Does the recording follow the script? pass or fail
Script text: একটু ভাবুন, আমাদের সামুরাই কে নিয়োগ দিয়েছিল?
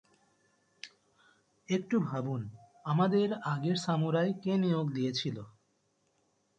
fail